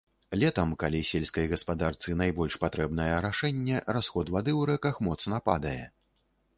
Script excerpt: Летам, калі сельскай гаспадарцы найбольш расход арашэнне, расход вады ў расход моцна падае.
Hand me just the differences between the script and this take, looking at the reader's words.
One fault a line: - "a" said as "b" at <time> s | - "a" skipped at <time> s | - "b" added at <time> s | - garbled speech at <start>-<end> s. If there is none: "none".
- "расход" said as "патрэбнае" at 2.6 s
- "расход" said as "рэках" at 4.8 s